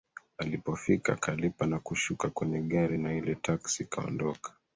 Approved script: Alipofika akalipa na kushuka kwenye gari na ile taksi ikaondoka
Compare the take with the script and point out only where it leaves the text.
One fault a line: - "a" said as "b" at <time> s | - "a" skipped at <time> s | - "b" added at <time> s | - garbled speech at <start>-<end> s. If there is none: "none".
none